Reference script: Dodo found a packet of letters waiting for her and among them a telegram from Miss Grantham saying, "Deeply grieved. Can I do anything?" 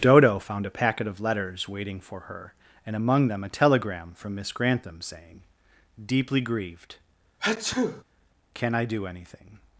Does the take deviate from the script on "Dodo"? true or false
false